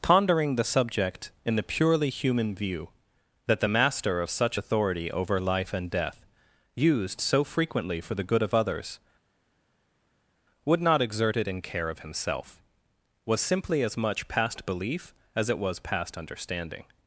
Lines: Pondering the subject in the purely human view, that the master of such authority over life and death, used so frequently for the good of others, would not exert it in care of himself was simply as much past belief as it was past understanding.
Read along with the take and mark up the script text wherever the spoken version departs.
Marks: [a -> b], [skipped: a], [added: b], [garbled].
Pondering the subject in the purely human view, that the master of such authority over life and death, used so frequently for the good of others, would not exert it in care of himself was simply as much past belief as it was past understanding.